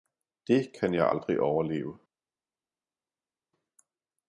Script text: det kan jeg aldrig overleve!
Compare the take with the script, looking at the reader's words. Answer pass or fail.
pass